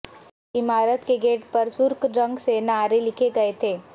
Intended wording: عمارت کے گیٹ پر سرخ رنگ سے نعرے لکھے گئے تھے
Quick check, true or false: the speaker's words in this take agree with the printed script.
true